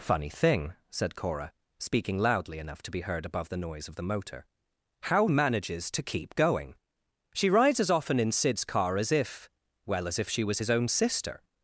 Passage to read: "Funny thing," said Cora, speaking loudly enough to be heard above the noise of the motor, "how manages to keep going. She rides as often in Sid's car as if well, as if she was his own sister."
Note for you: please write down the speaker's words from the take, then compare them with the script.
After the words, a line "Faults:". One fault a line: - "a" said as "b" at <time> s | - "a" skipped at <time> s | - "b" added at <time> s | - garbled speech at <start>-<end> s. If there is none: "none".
"Funny thing," said Cora, speaking loudly enough to be heard above the noise of the motor, "how manages to keep going. She rides as often in Sid's car as if well, as if she was his own sister."
Faults:
none